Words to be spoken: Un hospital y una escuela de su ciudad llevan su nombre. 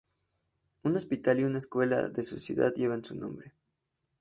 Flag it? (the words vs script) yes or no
no